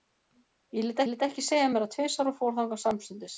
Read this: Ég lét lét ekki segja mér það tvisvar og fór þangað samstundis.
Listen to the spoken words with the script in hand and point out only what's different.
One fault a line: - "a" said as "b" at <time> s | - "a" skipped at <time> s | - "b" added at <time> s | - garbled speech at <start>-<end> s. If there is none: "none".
none